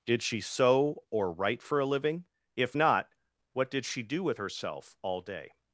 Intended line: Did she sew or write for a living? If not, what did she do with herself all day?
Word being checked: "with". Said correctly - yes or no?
yes